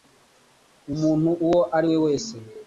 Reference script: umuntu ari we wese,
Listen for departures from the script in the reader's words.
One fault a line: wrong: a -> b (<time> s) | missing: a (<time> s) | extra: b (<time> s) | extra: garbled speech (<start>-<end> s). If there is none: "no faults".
extra: uwo (1.4 s)